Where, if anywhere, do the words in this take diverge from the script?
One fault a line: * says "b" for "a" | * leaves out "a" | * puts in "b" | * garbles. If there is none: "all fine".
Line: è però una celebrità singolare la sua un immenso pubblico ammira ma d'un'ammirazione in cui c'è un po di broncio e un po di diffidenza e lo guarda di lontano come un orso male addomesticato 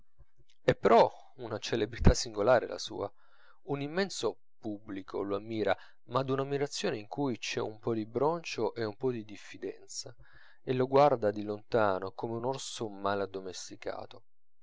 * puts in "lo"